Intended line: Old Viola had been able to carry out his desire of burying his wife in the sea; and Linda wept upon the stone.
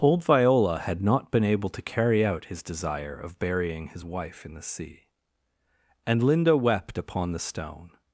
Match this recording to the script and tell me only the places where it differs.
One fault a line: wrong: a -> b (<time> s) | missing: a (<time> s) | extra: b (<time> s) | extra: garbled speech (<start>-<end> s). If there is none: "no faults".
extra: not (1.0 s)